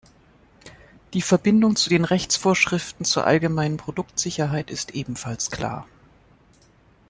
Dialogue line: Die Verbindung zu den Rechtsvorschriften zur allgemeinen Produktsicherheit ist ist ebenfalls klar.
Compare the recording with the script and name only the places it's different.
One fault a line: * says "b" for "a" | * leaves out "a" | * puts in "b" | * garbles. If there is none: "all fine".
* leaves out "ist"